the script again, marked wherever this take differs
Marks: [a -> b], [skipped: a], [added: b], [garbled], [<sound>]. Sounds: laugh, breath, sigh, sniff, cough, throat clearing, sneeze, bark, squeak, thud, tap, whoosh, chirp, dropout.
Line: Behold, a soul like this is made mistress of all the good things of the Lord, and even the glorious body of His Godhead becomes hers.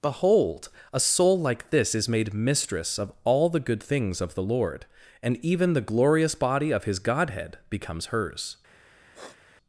Behold, a soul like this is made mistress of all the good things of the Lord, and even the glorious body of His Godhead becomes hers. [sniff]